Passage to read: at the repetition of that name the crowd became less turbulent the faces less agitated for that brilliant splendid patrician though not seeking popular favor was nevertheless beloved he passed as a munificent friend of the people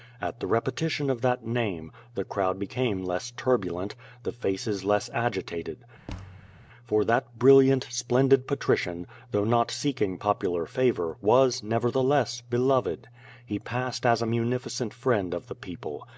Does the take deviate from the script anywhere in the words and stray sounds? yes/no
yes